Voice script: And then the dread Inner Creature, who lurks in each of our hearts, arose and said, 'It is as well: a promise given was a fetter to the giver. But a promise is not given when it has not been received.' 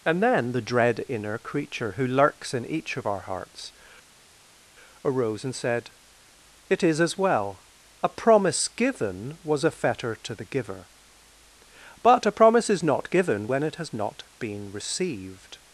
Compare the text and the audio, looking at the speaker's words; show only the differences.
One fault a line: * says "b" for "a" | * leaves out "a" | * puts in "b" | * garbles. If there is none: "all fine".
all fine